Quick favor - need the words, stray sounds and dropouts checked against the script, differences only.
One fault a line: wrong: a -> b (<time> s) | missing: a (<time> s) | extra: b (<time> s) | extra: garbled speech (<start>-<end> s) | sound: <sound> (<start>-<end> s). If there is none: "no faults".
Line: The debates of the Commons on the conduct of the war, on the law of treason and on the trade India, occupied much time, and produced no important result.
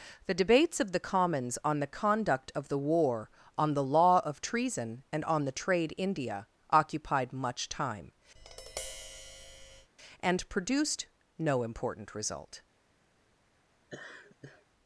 sound: tap (8.4-9.9 s)
sound: laugh (13.9-14.6 s)